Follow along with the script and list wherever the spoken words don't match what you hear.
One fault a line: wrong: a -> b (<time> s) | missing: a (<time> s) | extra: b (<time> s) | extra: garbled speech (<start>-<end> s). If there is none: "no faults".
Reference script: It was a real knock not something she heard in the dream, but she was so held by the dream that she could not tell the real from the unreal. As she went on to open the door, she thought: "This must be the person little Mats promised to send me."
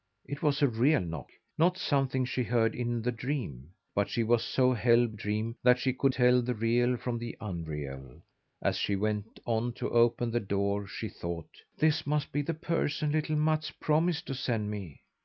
missing: by the (5.1 s)
missing: not (6.1 s)